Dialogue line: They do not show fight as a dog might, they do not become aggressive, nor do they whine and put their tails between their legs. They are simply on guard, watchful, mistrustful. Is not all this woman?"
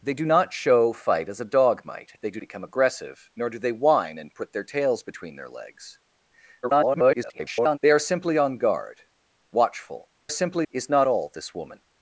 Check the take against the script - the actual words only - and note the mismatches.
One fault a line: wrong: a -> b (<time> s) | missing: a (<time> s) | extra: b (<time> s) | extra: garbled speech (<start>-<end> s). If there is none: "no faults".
missing: not (2.4 s)
extra: garbled speech (6.6-7.8 s)
wrong: mistrustful -> simply (10.3 s)